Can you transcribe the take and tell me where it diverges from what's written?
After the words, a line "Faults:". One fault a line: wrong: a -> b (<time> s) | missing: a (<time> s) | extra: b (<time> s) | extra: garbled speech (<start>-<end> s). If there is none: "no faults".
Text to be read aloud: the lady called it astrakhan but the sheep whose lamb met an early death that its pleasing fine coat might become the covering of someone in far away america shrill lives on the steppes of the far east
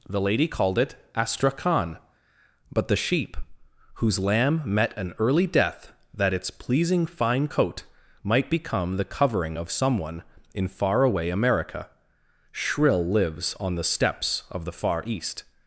the lady called it astrakhan but the sheep whose lamb met an early death that its pleasing fine coat might become the covering of someone in far away america shrill lives on the steppes of the far east
Faults:
no faults